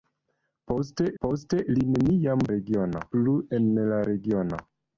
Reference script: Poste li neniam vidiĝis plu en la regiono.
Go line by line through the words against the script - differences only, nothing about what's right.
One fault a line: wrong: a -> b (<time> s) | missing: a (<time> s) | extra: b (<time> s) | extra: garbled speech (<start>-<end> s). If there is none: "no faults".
extra: poste (1.2 s)
wrong: vidiĝis -> regiono (2.5 s)